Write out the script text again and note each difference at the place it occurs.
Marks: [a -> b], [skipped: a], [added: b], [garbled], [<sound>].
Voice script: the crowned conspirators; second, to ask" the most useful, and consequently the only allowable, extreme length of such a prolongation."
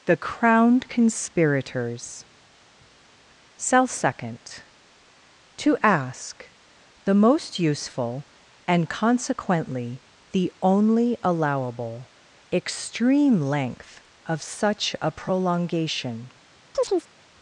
the crowned conspirators; [added: cell] second, to ask" the most useful, and consequently the only allowable, extreme length of such a prolongation." [chirp]